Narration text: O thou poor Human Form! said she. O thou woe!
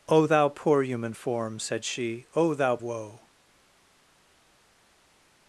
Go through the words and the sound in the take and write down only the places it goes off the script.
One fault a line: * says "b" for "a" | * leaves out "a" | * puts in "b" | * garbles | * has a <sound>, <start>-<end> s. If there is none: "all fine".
all fine